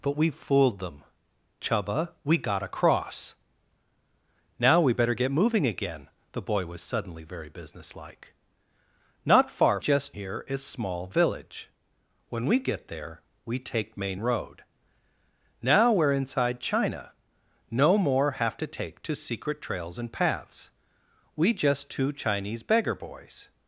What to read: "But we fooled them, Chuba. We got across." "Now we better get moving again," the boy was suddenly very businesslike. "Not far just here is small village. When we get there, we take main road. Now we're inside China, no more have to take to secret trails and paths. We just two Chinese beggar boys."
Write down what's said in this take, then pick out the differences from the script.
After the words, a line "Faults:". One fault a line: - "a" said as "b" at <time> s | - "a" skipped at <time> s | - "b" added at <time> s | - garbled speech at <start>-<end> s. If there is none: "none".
"But we fooled them, Chuba. We got across." "Now we better get moving again," the boy was suddenly very businesslike. "Not far just here is small village. When we get there, we take main road. Now we're inside China, no more have to take to secret trails and paths. We just two Chinese beggar boys."
Faults:
none